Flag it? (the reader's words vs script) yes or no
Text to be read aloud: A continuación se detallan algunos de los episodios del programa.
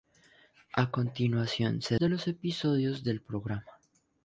yes